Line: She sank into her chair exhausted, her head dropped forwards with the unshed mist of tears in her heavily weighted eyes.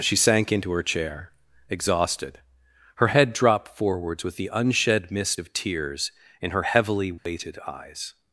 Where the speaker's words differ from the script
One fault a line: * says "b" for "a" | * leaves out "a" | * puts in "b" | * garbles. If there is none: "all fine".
all fine